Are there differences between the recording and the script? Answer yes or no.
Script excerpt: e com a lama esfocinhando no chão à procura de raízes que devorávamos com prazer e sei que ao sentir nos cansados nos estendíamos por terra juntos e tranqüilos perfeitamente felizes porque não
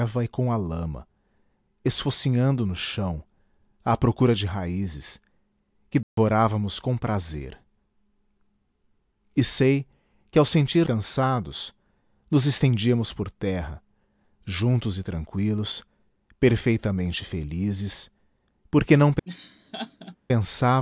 yes